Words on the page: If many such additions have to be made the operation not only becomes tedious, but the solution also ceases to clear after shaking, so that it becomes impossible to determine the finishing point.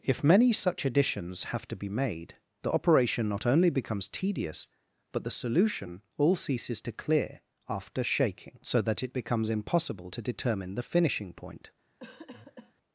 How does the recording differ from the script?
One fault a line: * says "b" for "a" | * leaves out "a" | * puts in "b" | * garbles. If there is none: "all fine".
* says "all" for "also"